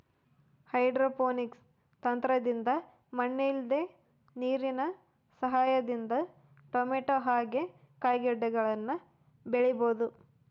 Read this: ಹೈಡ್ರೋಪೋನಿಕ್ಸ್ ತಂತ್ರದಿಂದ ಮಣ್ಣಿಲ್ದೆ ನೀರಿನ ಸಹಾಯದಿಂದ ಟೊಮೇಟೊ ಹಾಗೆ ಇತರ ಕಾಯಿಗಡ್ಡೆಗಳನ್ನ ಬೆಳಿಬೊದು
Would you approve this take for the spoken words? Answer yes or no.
no